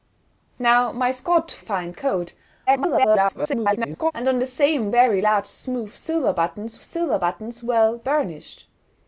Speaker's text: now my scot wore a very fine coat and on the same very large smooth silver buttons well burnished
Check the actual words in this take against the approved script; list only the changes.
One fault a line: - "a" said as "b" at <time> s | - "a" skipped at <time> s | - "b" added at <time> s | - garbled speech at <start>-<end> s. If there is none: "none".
- "wore a very" skipped at 1.6 s
- garbled speech at 2.7-4.1 s
- "silver buttons" added at 6.8 s